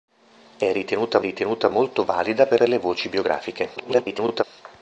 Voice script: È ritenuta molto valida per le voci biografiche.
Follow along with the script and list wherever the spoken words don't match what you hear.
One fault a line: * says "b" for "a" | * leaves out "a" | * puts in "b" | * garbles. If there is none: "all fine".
* puts in "ritenuta"
* puts in "per"
* garbles